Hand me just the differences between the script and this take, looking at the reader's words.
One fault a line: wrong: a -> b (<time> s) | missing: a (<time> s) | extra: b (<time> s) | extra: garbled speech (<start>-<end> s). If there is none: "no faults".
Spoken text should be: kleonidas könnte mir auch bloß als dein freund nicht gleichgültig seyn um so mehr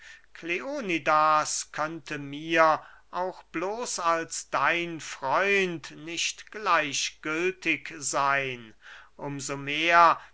no faults